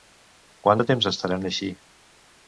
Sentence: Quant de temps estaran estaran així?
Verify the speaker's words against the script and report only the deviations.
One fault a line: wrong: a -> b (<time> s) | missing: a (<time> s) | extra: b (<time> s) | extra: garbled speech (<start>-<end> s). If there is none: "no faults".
missing: estaran (1.5 s)